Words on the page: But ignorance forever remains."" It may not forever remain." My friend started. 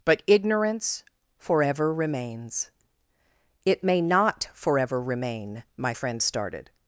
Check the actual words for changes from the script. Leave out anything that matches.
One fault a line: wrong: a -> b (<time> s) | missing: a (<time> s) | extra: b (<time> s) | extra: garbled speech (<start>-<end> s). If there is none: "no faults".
no faults